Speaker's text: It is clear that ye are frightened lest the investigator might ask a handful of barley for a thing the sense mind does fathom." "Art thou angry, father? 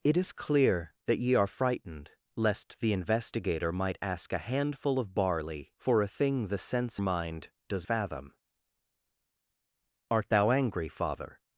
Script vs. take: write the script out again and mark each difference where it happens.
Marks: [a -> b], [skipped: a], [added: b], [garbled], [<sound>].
It is clear that ye are frightened lest the investigator might ask a handful of barley for a thing the sense mind does fathom." "Art thou angry, father?